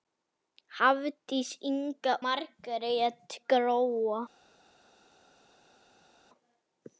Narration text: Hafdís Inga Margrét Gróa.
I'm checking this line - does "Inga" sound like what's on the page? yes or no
yes